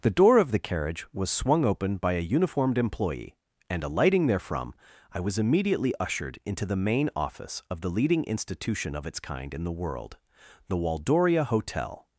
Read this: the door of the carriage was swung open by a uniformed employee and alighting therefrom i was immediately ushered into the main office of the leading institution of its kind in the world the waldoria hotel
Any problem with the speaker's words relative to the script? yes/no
no